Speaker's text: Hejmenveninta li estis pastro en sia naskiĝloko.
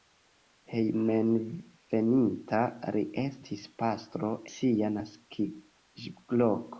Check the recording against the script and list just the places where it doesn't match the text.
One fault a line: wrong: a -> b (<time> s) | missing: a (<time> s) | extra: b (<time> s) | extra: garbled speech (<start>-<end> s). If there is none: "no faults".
missing: en (4.3 s)